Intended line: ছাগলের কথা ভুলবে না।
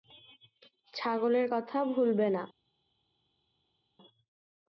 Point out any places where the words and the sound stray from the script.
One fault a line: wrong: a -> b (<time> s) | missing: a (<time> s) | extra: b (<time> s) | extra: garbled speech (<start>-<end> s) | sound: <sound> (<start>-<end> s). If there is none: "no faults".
no faults